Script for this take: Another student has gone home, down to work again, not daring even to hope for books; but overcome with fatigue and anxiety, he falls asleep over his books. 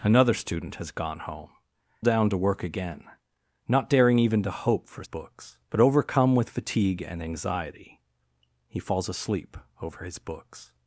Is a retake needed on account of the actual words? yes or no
no